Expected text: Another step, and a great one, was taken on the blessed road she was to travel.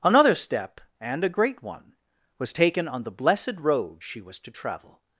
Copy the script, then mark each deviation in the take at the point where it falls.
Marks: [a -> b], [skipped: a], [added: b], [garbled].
Another step, and a great one, was taken on the blessed road she was to travel.